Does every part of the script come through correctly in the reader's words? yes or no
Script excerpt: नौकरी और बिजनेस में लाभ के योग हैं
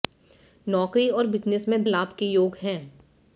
yes